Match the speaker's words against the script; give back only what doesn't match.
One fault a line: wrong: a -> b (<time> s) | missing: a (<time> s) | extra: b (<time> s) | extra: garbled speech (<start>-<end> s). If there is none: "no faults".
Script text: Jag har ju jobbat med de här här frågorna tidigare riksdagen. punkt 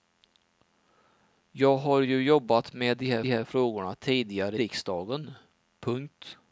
no faults